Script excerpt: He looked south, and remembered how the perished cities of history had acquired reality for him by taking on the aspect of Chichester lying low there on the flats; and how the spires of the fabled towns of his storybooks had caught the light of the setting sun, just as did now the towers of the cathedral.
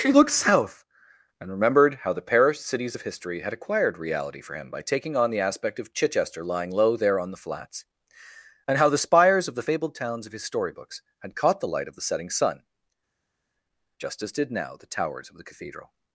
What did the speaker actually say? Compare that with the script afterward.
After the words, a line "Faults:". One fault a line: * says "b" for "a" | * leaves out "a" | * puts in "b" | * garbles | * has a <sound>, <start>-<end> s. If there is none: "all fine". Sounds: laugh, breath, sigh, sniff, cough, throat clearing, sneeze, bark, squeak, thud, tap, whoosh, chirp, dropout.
He looked south, and remembered how the perished cities of history had acquired reality for him by taking on the aspect of Chichester lying low there on the flats; and how the spires of the fabled towns of his storybooks had caught the light of the setting sun, just as did now the towers of the cathedral.
Faults:
all fine